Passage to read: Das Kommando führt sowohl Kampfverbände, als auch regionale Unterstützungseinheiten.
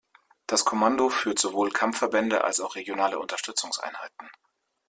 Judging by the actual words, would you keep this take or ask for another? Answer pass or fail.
pass